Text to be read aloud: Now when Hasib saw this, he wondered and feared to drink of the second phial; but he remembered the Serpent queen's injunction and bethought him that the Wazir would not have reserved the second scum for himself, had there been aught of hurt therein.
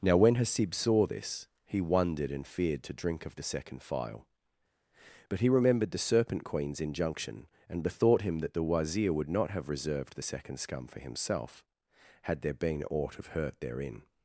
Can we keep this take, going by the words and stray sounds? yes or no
yes